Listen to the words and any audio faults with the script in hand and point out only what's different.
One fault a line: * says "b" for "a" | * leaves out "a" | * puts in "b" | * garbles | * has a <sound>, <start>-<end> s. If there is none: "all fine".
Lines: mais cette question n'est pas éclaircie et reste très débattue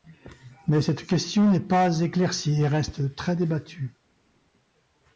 all fine